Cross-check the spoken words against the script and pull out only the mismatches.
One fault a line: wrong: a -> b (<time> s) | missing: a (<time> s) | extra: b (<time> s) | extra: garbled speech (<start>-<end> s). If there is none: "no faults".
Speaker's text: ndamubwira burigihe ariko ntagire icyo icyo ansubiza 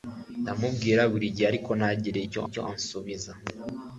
no faults